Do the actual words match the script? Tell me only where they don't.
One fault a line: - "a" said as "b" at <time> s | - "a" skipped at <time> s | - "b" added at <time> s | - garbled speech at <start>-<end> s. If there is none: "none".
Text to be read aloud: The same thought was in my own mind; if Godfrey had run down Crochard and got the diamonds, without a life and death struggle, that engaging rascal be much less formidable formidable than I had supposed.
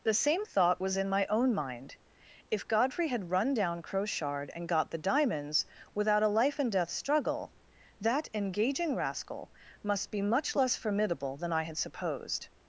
- "must" added at 9.8 s
- "formidable" skipped at 11.4 s